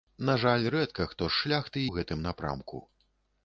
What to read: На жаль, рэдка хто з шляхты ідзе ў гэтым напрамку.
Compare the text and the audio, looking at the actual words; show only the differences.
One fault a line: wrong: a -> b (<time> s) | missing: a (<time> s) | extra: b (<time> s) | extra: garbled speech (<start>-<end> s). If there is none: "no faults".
missing: ідзе (1.9 s)